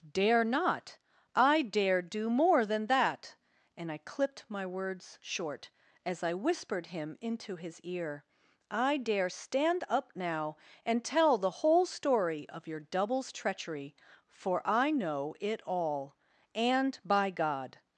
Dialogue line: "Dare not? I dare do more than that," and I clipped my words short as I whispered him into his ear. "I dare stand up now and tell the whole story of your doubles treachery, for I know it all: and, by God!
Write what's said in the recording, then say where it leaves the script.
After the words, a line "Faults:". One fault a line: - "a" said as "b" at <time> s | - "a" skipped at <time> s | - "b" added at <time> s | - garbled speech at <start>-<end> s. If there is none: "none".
"Dare not? I dare do more than that," and I clipped my words short as I whispered him into his ear. "I dare stand up now and tell the whole story of your doubles treachery, for I know it all: and, by God!
Faults:
none